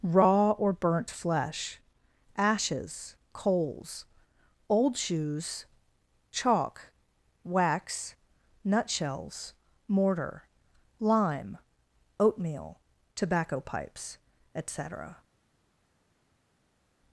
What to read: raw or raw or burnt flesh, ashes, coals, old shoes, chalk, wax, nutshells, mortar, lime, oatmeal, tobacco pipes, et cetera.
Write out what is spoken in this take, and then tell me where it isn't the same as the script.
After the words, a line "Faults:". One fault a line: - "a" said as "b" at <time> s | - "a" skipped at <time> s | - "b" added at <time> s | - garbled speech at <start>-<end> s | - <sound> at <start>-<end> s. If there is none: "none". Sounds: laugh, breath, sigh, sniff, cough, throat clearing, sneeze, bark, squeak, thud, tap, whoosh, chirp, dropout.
raw or burnt flesh, ashes, coals, old shoes, chalk, wax, nutshells, mortar, lime, oatmeal, tobacco pipes, et cetera.
Faults:
- "raw or" skipped at 0.7 s